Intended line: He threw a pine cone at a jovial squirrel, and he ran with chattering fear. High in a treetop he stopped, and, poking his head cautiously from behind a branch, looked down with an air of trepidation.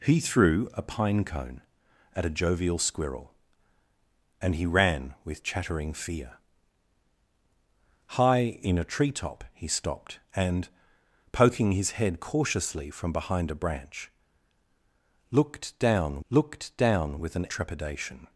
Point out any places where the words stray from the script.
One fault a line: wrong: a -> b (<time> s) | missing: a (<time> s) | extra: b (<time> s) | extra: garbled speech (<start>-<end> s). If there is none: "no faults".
extra: looked down (16.3 s)
missing: air of (17.5 s)